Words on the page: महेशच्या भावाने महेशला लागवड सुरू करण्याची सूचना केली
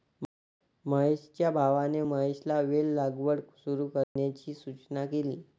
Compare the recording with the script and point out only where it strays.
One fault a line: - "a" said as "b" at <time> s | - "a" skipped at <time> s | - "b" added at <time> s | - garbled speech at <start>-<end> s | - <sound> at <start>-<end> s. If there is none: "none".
- "वेल" added at 2.6 s
- dropout at 4.0-4.2 s